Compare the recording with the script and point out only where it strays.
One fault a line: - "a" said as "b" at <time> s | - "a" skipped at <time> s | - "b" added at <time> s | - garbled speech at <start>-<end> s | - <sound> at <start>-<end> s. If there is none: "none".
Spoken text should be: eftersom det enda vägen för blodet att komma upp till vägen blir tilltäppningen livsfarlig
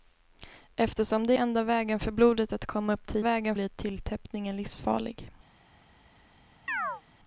- chirp at 6.7-7.0 s